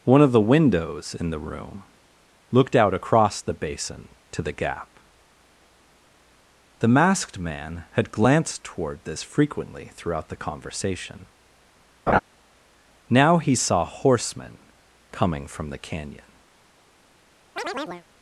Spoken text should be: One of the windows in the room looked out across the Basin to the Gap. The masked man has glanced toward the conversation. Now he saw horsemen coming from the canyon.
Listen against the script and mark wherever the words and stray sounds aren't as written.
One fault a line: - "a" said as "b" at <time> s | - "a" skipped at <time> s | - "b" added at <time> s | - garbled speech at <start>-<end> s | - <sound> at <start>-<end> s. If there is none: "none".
- "has" said as "had" at 7.9 s
- "this frequently throughout" added at 9.1 s
- laugh at 12.1-12.2 s
- chirp at 17.6-18.1 s